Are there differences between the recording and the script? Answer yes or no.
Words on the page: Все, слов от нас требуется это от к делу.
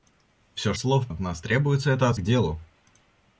no